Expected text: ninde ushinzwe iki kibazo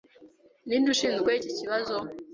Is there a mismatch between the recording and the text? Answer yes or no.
no